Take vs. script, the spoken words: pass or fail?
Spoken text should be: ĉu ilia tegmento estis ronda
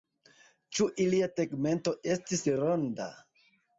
pass